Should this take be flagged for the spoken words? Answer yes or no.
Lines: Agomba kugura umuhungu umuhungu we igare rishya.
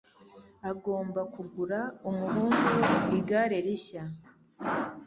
yes